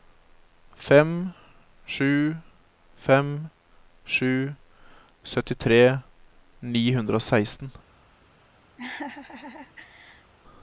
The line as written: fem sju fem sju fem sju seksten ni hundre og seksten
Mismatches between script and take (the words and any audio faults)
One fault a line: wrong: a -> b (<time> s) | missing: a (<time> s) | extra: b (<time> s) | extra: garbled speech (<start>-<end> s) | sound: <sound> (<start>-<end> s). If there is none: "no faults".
wrong: fem sju seksten -> syttitre (5.2 s)
sound: laugh (8.8-10.3 s)